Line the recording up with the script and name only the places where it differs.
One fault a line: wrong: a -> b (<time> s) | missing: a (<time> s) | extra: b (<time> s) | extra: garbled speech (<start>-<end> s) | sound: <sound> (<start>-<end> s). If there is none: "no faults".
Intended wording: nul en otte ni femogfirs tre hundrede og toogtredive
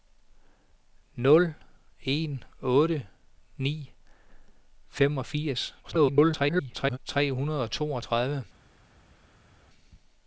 extra: garbled speech (5.8-7.0 s)